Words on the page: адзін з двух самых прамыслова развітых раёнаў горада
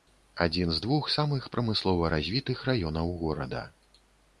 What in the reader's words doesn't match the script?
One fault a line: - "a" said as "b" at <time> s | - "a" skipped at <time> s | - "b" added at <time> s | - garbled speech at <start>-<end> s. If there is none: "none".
none